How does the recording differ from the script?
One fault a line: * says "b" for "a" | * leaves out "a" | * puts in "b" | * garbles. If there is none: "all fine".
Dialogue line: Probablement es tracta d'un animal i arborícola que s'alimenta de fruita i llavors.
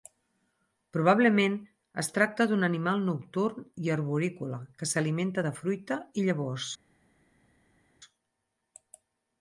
* puts in "nocturn"